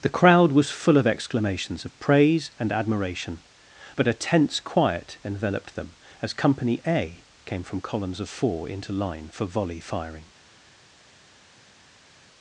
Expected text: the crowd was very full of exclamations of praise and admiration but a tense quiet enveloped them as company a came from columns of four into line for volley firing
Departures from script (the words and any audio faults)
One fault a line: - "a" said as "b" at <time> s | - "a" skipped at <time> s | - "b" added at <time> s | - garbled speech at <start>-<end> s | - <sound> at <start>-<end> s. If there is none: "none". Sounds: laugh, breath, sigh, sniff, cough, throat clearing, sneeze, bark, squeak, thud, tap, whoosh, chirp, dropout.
- "very" skipped at 0.7 s